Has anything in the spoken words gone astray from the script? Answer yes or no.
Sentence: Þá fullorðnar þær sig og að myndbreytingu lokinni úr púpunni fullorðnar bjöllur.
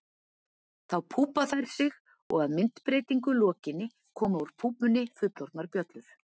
yes